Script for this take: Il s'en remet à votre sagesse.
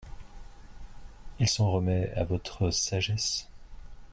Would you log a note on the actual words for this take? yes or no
no